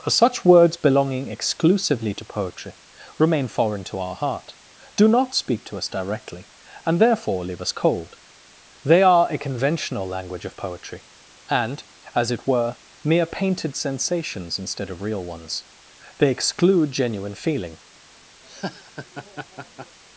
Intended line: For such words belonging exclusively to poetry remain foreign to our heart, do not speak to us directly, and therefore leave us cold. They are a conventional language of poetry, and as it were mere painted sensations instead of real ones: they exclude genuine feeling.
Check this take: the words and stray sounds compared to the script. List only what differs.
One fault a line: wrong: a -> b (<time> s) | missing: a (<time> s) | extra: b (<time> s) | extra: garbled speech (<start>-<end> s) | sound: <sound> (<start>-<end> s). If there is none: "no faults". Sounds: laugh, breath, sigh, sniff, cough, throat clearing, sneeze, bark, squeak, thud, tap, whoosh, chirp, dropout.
sound: laugh (18.4-20.0 s)